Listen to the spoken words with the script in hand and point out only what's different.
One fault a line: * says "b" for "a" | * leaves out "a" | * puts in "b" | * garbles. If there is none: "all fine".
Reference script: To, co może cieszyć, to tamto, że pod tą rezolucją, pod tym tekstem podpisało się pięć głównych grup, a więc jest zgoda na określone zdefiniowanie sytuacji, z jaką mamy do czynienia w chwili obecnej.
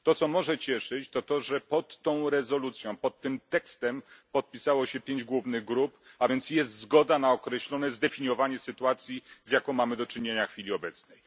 * says "to" for "tamto"